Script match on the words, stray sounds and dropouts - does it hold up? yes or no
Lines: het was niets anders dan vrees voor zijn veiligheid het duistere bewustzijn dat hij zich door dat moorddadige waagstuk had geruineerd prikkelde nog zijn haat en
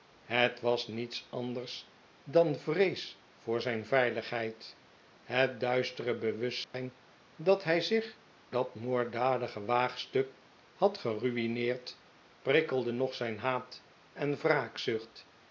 no